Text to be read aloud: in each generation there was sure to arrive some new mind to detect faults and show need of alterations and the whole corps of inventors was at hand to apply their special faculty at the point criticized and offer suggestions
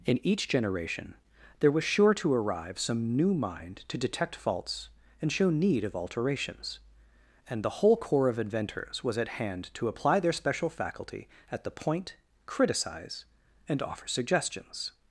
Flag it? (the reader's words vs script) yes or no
yes